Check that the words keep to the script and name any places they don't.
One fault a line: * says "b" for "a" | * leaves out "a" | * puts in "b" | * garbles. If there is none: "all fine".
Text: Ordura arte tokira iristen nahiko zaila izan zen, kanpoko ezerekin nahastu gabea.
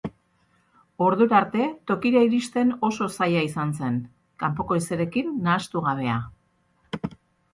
* says "oso" for "nahiko"